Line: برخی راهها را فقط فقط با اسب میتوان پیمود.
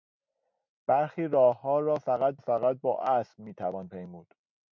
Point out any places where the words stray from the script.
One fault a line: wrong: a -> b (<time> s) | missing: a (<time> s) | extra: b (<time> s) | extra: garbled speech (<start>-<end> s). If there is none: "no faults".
no faults